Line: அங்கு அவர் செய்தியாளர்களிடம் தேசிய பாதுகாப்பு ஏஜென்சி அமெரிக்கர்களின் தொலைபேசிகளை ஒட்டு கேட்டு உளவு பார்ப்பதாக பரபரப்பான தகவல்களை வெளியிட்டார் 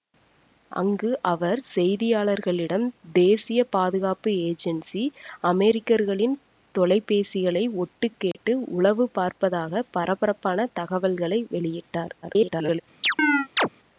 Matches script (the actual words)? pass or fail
fail